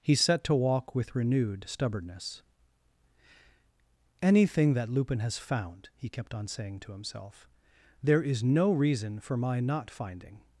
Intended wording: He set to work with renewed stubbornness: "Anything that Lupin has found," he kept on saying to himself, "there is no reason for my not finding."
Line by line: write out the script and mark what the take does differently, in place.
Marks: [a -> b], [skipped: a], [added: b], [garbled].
He set to [work -> walk] with renewed stubbornness: "Anything that Lupin has found," he kept on saying to himself, "there is no reason for my not finding."